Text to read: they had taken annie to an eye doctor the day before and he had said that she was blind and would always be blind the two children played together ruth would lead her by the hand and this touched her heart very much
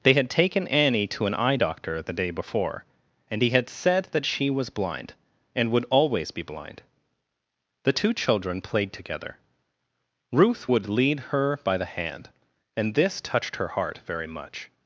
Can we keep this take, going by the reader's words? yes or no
yes